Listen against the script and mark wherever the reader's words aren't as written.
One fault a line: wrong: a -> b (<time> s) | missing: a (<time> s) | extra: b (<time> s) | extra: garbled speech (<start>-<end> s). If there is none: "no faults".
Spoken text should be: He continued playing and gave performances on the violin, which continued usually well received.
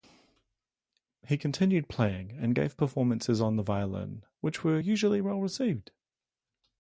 wrong: continued -> were (4.6 s)